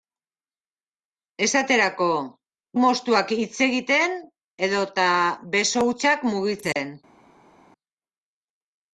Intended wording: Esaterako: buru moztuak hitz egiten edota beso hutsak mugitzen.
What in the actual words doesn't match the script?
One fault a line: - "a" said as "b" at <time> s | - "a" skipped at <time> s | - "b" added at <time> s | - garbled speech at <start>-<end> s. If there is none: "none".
- "buru" skipped at 2.1 s